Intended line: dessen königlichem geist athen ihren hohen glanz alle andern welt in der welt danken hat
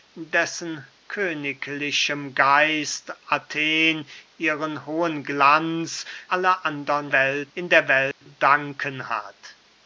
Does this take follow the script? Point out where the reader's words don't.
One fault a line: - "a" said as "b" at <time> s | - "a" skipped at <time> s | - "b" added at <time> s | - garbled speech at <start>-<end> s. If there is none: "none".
none